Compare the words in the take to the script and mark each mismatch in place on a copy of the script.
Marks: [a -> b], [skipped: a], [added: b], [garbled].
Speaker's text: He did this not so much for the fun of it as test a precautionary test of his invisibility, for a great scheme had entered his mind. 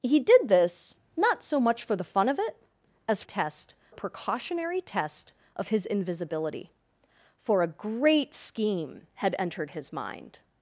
He did this not so much for the fun of it as test a precautionary test of his invisibility, for a great scheme had entered his mind.